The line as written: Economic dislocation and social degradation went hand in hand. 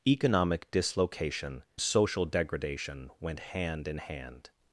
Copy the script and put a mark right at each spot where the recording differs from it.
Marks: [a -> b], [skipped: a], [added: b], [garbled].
Economic dislocation [skipped: and] social degradation went hand in hand.